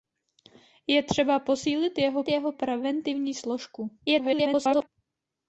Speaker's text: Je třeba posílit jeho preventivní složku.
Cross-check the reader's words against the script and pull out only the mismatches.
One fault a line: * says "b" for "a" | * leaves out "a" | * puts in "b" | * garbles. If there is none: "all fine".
* puts in "jeho"
* garbles